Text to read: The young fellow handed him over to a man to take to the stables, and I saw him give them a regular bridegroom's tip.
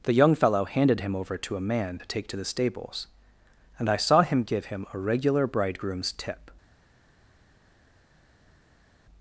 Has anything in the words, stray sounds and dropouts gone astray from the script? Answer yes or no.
yes